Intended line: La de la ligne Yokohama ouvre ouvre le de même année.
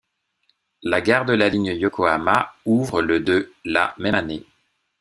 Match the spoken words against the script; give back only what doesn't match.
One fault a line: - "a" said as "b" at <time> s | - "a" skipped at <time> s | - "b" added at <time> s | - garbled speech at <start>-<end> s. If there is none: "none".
- "gare" added at 1.0 s
- "ouvre" skipped at 3.0 s
- "la" added at 3.6 s